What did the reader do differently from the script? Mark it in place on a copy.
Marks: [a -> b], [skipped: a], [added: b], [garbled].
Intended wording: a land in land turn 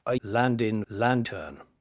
a land in land turn